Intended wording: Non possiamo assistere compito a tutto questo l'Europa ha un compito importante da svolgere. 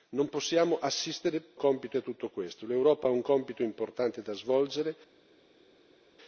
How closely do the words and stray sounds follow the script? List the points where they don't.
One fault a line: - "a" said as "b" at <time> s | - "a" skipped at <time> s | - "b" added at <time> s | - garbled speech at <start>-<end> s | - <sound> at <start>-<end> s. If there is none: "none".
none